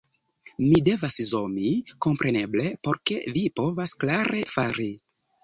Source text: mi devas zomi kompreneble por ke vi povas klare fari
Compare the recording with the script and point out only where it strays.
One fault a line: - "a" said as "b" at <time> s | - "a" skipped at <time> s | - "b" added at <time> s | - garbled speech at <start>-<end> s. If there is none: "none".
none